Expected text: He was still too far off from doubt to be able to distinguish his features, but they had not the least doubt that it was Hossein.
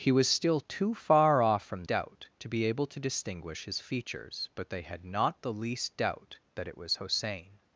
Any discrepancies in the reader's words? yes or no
no